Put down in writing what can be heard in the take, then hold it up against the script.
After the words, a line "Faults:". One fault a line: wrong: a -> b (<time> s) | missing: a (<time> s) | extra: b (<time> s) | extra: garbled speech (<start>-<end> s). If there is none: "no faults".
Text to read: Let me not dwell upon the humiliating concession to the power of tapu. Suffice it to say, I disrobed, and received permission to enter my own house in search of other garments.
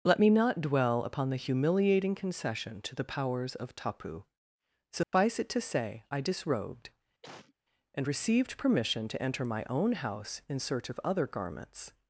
Let me not dwell upon the humiliating concession to the powers of tapu. Suffice it to say, I disrobed, and received permission to enter my own house in search of other garments.
Faults:
wrong: power -> powers (3.0 s)